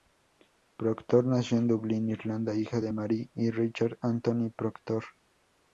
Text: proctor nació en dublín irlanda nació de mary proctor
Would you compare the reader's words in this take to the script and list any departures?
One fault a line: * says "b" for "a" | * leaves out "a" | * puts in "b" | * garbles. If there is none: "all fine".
* says "hija" for "nació"
* puts in "y richard anthony"